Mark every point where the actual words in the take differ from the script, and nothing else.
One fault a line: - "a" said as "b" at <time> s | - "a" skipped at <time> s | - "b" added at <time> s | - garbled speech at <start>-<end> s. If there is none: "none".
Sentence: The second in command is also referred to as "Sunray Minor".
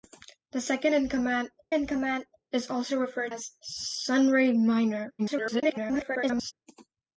- "in command" added at 1.7 s
- "to" skipped at 3.3 s
- garbled speech at 5.2-6.5 s